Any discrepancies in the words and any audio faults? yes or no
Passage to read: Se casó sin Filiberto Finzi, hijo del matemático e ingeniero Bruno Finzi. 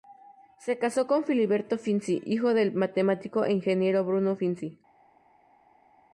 yes